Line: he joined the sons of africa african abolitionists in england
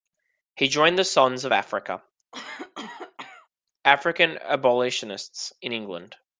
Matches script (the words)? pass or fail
pass